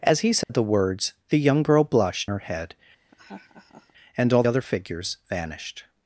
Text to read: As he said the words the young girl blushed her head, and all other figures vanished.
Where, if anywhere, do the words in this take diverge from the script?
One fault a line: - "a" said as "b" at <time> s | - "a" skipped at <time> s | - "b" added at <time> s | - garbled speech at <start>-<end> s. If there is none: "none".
none